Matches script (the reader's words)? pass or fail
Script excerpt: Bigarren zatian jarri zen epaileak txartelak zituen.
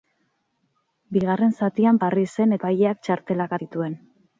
pass